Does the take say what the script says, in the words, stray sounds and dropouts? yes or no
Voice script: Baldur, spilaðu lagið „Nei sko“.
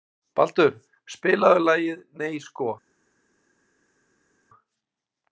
yes